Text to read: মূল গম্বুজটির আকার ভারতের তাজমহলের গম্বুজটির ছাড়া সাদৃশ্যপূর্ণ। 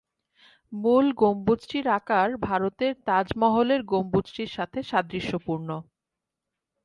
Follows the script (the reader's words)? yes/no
no